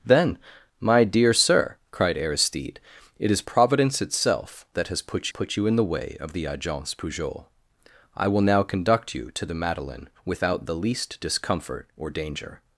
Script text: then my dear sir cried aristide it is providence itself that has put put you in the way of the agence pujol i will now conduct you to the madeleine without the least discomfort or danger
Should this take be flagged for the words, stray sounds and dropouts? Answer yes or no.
no